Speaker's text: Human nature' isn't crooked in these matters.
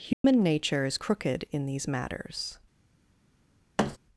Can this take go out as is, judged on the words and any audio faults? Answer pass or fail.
fail